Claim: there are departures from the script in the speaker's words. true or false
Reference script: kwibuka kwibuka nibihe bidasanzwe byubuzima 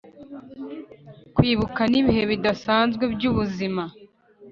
true